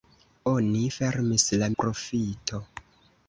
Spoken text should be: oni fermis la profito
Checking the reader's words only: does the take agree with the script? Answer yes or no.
yes